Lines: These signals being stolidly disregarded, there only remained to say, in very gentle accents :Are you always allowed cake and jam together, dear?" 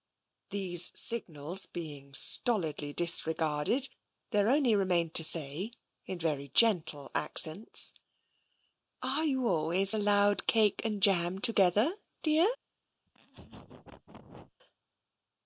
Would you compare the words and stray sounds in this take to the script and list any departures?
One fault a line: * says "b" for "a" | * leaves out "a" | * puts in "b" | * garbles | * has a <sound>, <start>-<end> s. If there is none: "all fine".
* has a laugh, 13.1-14.5 s